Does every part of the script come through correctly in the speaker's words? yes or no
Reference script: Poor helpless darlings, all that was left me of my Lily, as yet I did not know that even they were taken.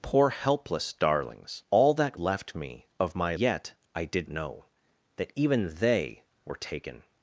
no